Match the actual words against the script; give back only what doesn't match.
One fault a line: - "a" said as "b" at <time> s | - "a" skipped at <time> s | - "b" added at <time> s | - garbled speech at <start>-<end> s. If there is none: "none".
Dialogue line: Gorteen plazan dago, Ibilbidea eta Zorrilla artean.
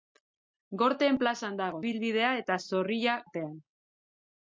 none